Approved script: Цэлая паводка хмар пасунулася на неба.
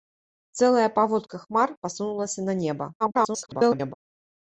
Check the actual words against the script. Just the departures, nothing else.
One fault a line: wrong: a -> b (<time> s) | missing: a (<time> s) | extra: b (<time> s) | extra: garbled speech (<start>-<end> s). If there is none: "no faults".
extra: garbled speech (3.0-3.9 s)